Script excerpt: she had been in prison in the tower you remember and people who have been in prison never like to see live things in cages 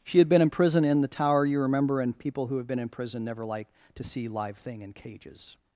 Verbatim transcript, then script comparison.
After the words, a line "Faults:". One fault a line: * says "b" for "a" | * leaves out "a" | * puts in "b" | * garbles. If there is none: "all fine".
she had been in prison in the tower you remember and people who have been in prison never like to see live thing in cages
Faults:
* says "thing" for "things"